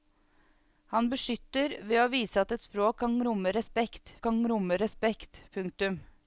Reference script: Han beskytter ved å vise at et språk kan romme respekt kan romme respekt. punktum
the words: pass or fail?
pass